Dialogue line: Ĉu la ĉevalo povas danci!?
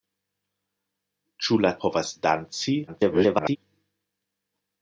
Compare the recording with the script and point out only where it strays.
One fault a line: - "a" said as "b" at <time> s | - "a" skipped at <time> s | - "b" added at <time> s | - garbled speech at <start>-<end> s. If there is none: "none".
- "ĉevalo" skipped at 1.7 s
- garbled speech at 2.9-3.6 s